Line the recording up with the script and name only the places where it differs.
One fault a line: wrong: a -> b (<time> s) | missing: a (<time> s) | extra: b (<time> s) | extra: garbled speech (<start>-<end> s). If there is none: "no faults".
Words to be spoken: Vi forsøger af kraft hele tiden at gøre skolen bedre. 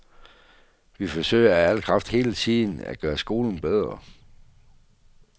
extra: al (1.7 s)